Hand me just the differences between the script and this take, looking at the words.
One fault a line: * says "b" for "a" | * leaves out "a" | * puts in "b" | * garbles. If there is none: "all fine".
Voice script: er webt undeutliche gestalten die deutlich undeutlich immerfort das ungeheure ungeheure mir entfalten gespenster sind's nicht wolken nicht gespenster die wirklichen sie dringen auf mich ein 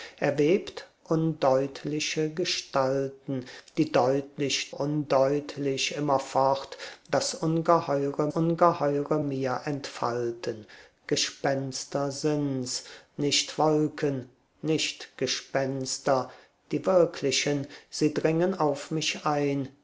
all fine